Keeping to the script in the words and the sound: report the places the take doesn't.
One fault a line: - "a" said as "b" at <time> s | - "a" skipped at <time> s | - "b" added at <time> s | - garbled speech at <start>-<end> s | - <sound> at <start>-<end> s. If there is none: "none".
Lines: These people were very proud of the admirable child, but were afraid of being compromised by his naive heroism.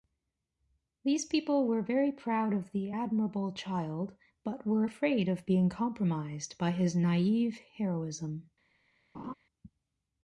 - laugh at 9.1-9.3 s